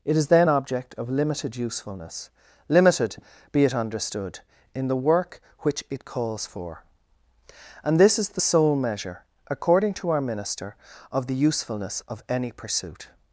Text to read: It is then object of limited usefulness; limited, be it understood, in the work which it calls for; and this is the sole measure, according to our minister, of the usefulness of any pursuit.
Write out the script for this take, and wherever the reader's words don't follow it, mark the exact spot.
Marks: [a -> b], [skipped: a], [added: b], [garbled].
It is then object of limited usefulness; limited, be it understood, in the work which it calls for; and this is the sole measure, according to our minister, of the usefulness of any pursuit.